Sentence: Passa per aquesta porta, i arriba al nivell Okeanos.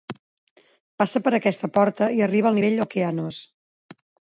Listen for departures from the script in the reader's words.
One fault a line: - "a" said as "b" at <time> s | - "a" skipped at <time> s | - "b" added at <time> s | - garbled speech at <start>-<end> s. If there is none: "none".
none